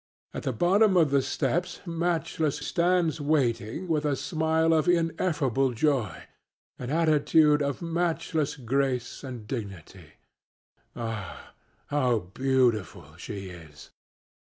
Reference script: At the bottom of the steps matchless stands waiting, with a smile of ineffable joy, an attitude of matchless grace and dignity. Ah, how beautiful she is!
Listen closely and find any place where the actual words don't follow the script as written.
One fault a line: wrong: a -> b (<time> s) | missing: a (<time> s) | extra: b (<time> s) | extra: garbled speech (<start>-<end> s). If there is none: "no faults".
no faults